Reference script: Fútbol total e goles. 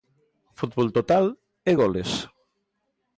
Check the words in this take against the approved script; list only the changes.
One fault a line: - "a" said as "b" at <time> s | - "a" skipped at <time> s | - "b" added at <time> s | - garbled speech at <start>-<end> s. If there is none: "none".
none